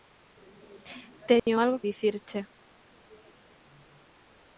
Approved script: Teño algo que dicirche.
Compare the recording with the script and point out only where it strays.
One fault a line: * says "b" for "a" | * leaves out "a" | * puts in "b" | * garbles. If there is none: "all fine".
* leaves out "que"